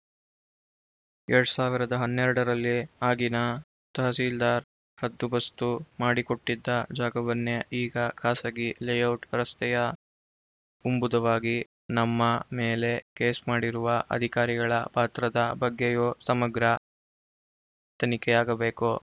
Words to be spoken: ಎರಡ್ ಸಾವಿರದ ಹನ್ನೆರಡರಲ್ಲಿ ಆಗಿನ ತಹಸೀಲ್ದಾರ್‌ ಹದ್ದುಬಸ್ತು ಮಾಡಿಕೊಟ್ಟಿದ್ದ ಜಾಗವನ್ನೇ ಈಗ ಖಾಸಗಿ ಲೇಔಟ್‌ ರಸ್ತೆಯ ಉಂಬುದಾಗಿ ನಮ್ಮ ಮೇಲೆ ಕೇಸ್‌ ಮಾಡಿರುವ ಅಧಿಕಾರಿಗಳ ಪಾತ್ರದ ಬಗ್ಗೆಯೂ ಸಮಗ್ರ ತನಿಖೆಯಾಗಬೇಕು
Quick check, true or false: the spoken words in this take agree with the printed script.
true